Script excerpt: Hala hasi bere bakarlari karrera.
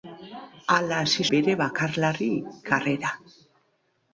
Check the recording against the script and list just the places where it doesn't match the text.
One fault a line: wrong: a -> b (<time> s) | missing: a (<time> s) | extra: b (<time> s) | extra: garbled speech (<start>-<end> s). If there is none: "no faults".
no faults